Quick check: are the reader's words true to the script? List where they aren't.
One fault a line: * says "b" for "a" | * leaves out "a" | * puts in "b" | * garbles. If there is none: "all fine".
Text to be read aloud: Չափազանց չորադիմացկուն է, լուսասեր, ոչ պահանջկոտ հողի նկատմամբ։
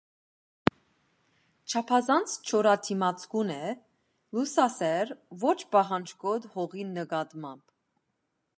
all fine